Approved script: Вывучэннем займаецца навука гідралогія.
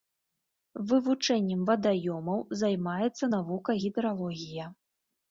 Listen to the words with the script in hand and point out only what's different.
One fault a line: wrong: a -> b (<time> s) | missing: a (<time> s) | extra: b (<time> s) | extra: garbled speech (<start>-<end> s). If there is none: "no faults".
extra: вадаёмаў (1.7 s)